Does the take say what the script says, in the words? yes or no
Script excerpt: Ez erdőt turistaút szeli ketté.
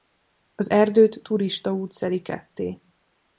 no